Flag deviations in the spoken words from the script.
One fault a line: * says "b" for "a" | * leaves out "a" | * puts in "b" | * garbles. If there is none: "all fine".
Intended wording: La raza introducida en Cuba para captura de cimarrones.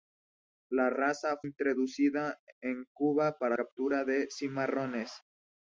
all fine